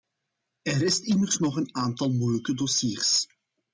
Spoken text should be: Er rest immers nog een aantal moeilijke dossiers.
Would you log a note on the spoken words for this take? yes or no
no